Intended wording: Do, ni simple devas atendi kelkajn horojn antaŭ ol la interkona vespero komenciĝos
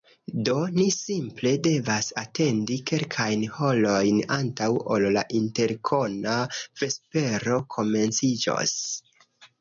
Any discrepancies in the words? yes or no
no